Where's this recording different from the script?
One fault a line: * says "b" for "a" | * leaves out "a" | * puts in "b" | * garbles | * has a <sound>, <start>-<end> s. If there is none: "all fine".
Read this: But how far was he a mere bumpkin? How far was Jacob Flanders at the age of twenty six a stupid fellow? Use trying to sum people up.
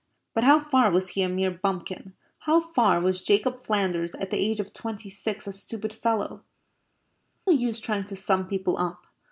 all fine